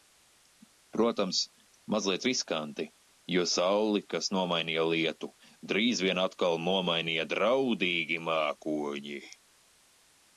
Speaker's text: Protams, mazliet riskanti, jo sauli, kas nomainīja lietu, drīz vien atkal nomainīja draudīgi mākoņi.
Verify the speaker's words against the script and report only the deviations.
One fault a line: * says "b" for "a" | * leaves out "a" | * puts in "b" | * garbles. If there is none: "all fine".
all fine